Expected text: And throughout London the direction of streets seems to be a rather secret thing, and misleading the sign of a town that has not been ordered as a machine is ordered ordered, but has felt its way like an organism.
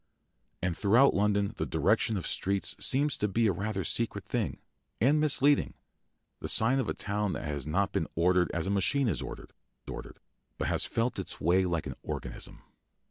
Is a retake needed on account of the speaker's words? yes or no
no